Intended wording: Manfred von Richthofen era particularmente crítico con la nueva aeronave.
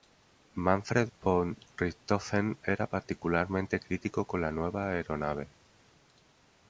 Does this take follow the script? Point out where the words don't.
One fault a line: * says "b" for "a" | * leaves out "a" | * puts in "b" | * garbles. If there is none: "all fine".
all fine